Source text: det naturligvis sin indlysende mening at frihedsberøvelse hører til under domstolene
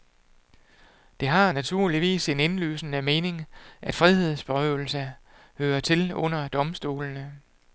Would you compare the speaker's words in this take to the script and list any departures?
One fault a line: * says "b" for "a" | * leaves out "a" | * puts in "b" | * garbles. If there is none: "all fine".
* puts in "har"